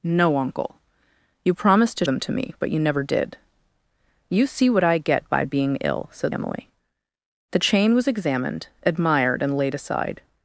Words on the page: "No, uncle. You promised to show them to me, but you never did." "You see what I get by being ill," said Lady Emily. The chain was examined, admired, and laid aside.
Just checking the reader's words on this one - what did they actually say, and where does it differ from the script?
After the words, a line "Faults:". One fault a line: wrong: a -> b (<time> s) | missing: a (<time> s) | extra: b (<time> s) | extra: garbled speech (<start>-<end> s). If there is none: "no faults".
"No, uncle. You promised to them to me, but you never did." "You see what I get by being ill," said Emily. The chain was examined, admired, and laid aside.
Faults:
missing: show (2.0 s)
missing: Lady (6.3 s)